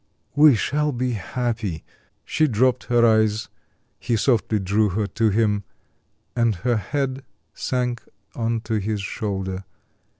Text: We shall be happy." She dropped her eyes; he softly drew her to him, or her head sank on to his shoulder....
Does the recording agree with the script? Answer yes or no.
no